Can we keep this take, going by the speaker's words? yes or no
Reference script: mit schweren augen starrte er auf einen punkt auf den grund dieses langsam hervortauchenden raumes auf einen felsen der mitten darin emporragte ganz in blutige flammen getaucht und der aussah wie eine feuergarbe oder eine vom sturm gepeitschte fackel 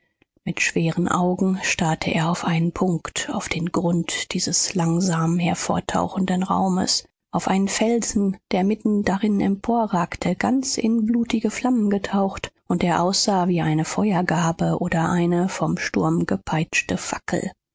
yes